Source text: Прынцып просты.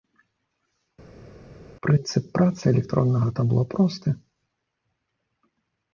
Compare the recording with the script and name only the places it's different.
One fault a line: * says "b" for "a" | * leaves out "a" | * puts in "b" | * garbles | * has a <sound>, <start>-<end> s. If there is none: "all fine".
* puts in "працы электроннага табло"